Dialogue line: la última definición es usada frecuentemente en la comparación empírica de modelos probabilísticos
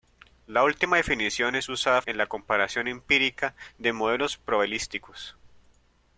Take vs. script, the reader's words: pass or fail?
fail